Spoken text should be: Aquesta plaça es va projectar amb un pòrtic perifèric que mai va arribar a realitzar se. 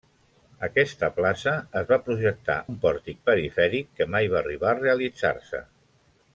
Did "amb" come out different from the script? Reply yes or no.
yes